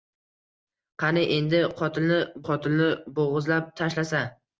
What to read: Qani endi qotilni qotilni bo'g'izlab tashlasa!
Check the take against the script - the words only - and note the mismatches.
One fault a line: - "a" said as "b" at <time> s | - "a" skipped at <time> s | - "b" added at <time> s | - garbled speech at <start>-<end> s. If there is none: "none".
none